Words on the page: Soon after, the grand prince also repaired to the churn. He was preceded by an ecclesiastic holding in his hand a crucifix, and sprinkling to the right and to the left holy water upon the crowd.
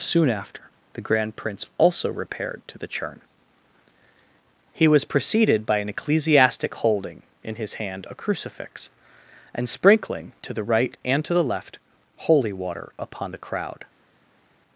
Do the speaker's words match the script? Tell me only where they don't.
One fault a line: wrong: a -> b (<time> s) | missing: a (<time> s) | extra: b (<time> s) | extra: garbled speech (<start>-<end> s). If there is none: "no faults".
no faults